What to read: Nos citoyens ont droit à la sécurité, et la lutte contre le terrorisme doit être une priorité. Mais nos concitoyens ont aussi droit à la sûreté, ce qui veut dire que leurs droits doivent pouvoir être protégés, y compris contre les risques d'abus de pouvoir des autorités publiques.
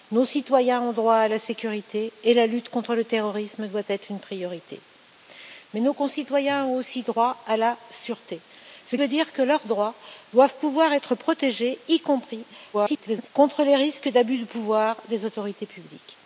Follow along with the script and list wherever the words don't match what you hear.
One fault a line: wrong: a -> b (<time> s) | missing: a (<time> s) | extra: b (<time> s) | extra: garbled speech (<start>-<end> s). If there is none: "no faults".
missing: qui (9.0 s)
extra: garbled speech (12.7-13.3 s)